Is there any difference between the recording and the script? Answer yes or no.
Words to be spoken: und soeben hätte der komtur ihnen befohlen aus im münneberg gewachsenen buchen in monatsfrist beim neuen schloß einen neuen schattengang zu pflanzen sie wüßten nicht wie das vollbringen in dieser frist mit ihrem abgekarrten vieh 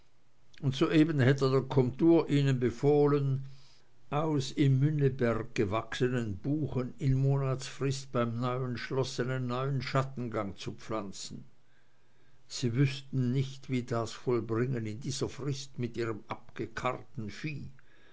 no